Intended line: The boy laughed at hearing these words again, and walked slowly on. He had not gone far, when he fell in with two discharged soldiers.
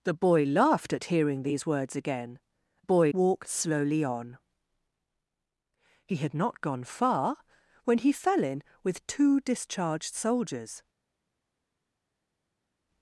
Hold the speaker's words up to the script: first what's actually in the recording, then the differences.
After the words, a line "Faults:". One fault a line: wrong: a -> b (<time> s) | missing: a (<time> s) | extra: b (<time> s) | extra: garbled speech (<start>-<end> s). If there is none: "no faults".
The boy laughed at hearing these words again, boy walked slowly on. He had not gone far, when he fell in with two discharged soldiers.
Faults:
wrong: and -> boy (2.8 s)